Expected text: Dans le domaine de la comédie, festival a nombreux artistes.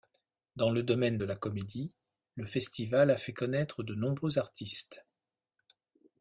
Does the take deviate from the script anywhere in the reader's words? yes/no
yes